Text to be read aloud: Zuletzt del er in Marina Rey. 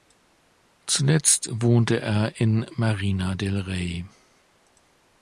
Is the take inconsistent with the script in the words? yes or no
yes